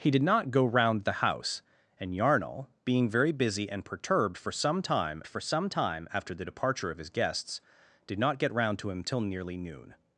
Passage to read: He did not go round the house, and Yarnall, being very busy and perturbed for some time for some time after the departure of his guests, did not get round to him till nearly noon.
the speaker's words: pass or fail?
pass